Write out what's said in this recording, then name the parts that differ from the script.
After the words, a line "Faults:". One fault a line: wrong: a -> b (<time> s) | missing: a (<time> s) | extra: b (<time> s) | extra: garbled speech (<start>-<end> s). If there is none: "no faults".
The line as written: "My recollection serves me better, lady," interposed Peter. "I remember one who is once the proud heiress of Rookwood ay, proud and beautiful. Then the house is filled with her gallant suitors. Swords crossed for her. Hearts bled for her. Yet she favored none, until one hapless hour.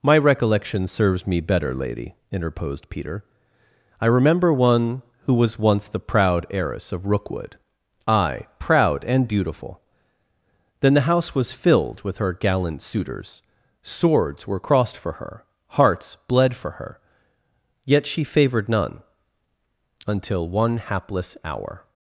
"My recollection serves me better, lady," interposed Peter. "I remember one who was once the proud heiress of Rookwood ay, proud and beautiful. Then the house was filled with her gallant suitors. Swords were crossed for her. Hearts bled for her. Yet she favored none, until one hapless hour.
Faults:
wrong: is -> was (5.3 s)
wrong: is -> was (11.3 s)
extra: were (14.5 s)